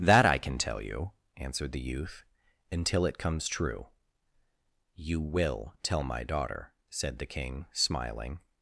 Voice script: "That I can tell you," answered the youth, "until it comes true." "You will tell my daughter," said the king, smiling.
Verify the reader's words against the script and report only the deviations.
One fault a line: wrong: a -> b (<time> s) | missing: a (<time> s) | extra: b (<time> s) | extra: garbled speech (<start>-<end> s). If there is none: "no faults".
no faults